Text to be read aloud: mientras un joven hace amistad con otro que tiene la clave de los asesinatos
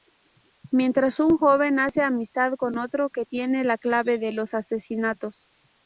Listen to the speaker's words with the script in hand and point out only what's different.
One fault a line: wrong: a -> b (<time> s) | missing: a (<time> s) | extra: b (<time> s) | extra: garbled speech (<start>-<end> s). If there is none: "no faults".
no faults